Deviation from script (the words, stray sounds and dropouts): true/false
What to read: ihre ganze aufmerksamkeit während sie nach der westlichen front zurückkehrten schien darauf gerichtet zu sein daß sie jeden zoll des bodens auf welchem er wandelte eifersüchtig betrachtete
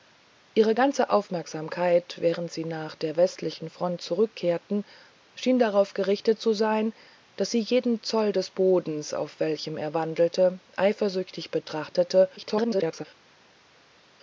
true